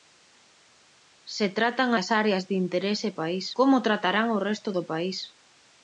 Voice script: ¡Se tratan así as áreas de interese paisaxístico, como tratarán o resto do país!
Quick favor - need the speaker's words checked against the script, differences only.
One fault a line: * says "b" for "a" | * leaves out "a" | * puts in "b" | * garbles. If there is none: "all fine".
* leaves out "así"
* says "país" for "paisaxístico"